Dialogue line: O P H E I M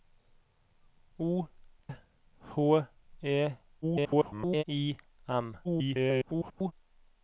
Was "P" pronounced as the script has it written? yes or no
no